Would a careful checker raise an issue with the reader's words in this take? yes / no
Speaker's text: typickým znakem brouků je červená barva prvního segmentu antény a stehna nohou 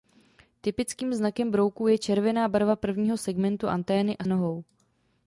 yes